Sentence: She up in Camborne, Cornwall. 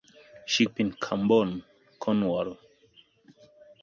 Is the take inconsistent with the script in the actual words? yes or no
no